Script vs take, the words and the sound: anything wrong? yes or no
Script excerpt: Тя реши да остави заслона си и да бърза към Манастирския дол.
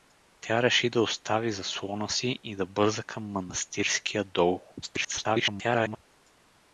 yes